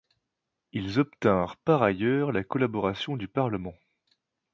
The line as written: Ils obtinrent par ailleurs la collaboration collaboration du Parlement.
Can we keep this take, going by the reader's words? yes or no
no